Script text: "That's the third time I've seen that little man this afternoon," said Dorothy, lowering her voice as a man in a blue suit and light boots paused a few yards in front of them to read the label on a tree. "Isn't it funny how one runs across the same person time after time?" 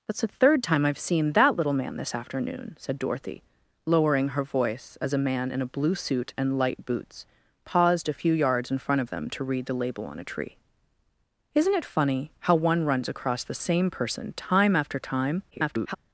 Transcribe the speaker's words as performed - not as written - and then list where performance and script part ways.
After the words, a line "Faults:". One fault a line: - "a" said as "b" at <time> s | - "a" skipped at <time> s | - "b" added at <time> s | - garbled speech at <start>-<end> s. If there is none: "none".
"That's the third time I've seen that little man this afternoon," said Dorothy, lowering her voice as a man in a blue suit and light boots paused a few yards in front of them to read the label on a tree. "Isn't it funny how one runs across the same person time after time?" [garbled]
Faults:
- garbled speech at 15.5-16.0 s